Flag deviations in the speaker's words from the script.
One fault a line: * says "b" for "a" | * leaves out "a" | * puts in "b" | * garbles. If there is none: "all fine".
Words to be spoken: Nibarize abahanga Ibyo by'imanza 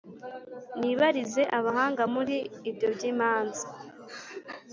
* puts in "Muri"